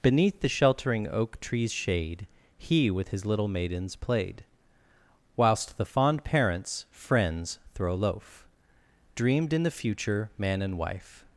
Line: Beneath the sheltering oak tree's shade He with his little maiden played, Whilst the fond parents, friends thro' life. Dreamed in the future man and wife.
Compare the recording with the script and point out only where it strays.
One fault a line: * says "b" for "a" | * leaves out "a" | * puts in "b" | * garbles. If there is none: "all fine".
* says "maidens" for "maiden"
* says "loaf" for "life"